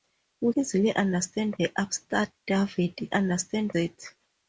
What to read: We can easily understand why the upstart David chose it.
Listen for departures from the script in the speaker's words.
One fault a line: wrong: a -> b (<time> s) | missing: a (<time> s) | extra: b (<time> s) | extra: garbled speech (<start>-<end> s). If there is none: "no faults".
missing: can (0.5 s)
missing: why (1.6 s)
wrong: chose -> understand (3.1 s)